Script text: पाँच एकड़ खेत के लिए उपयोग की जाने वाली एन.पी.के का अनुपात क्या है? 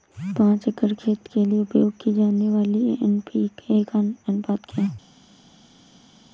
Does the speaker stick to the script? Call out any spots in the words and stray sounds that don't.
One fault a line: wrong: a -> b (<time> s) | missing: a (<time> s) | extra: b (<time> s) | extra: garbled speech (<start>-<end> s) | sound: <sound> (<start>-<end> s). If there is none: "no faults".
no faults